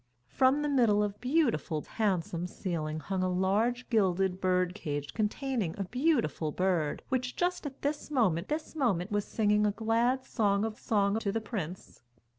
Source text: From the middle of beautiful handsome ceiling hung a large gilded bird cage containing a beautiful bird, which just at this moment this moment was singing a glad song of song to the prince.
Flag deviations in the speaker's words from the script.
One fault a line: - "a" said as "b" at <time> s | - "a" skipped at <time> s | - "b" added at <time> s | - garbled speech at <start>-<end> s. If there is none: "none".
none